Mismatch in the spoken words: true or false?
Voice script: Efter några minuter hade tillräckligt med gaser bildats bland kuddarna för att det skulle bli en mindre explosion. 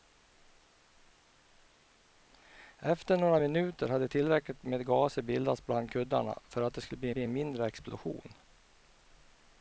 true